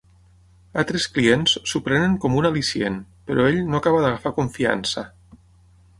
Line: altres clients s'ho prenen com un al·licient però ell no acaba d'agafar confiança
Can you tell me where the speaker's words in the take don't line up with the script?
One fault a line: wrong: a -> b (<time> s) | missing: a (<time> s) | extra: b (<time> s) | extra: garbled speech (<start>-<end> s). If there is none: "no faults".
no faults